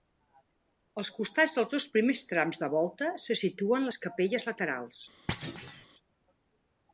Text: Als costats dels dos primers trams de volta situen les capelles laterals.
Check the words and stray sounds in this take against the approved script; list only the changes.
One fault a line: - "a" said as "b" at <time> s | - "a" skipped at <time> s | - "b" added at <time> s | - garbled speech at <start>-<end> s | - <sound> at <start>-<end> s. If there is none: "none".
- "se" added at 3.2 s
- thud at 5.3-5.9 s